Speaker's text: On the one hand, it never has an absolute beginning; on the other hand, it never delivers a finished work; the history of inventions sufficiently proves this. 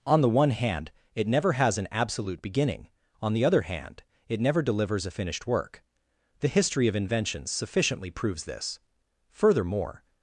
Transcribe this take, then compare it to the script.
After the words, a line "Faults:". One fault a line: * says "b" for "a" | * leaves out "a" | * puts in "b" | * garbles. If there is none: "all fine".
On the one hand, it never has an absolute beginning; on the other hand, it never delivers a finished work; the history of inventions sufficiently proves this. Furthermore
Faults:
* puts in "Furthermore"